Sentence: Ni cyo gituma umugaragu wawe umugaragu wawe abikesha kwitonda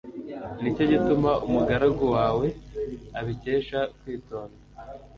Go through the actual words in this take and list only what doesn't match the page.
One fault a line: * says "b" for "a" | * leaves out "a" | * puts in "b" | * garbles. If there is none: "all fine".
* leaves out "umugaragu wawe"